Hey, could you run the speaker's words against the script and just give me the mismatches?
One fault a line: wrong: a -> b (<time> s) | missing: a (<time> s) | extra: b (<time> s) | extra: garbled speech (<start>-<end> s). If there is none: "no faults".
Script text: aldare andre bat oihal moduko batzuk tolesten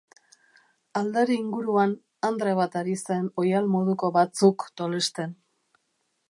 extra: inguruan (1.4 s)
extra: ari zen (2.8 s)